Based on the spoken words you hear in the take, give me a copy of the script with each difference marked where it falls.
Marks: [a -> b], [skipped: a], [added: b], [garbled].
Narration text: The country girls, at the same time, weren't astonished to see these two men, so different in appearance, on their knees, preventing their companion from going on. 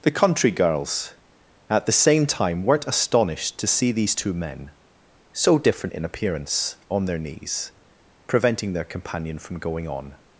The country girls, at the same time, weren't astonished to see these two men, so different in appearance, on their knees, preventing their companion from going on.